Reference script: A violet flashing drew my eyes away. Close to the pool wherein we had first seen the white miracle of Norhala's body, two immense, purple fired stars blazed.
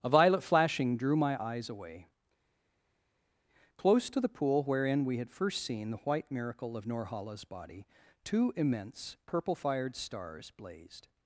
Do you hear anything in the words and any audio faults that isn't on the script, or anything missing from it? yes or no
no